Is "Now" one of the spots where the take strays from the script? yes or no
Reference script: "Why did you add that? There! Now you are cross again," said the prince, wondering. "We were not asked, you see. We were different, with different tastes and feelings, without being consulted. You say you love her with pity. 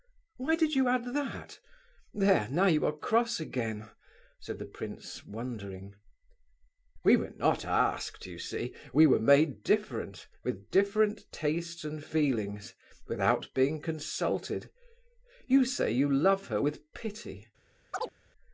no